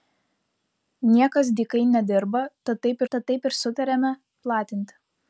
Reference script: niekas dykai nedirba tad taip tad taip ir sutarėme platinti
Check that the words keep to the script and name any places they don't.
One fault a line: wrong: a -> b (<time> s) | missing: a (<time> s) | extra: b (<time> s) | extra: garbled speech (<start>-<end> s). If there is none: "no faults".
no faults